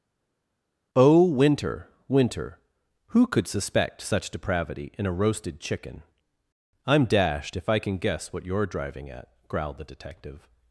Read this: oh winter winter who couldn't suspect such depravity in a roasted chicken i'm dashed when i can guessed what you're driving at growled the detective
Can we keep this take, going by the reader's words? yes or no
no